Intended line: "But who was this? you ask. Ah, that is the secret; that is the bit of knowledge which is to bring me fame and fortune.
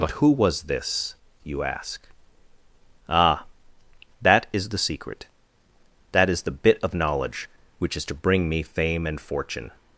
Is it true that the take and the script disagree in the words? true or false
false